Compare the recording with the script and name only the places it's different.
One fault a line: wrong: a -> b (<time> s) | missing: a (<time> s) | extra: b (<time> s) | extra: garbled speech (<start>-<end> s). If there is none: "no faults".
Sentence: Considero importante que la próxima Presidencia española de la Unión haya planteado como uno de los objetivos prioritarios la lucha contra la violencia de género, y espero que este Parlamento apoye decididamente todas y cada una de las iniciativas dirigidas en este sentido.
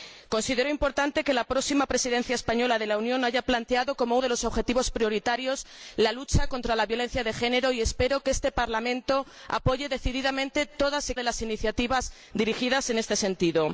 missing: uno (4.2 s)
missing: cada una (11.1 s)